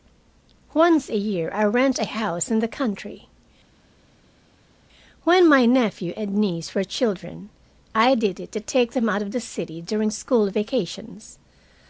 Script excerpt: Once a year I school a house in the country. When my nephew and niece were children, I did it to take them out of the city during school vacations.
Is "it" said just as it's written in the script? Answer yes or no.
yes